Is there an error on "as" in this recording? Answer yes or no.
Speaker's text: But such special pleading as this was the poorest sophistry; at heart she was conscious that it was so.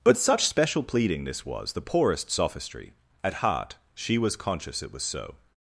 yes